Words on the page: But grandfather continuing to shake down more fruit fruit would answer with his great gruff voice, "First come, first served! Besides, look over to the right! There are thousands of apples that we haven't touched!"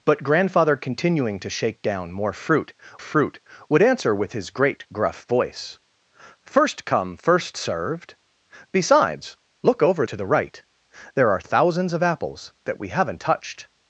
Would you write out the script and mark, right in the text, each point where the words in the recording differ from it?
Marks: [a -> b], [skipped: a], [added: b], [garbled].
But grandfather continuing to shake down more fruit fruit would answer with his great gruff voice, "First come, first served! Besides, look over to the right! There are thousands of apples that we haven't touched!"